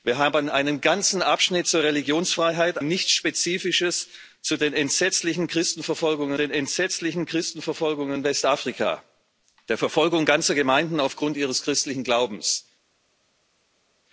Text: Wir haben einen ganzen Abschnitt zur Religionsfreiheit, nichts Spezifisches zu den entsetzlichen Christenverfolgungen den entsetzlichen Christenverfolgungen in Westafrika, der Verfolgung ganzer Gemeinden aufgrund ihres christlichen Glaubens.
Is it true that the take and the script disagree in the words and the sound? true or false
false